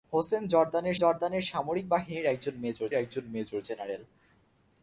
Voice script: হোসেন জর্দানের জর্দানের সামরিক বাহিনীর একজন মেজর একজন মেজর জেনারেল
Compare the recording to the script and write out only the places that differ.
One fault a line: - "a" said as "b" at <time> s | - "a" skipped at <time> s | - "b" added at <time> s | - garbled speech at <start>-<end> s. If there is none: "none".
none